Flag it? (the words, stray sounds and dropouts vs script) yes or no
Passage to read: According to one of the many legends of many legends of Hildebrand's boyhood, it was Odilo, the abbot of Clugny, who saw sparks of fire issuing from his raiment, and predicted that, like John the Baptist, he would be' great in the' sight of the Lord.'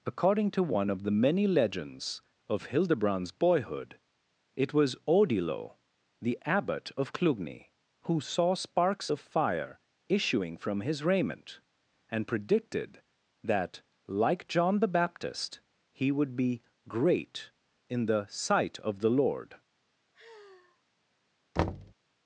yes